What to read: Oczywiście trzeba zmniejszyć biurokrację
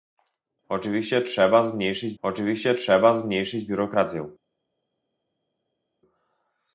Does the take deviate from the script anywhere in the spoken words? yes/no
yes